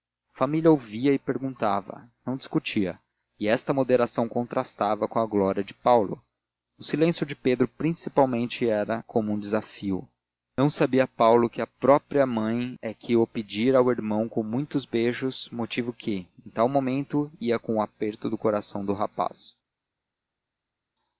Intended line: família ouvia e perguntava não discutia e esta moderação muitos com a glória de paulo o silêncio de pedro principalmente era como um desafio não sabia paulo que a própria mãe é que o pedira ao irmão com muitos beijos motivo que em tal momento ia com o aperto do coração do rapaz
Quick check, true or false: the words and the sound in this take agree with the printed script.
false